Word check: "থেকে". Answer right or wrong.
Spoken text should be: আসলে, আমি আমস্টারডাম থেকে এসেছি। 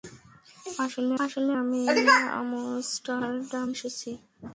wrong